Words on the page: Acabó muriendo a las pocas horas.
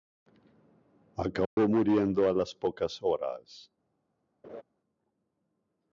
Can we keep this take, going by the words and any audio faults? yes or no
no